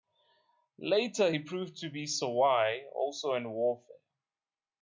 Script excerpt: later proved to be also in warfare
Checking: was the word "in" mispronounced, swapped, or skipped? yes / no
no